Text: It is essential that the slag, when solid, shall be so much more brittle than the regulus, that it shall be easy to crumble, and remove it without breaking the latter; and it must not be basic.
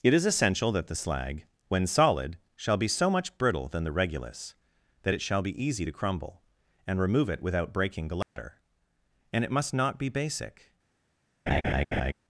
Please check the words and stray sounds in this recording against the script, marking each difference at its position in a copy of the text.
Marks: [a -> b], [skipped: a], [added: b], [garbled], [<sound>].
It is essential that the slag, when solid, shall be so much [skipped: more] brittle than the regulus, that it shall be easy to crumble, and remove it without breaking the latter; [dropout] and it must not be basic. [laugh]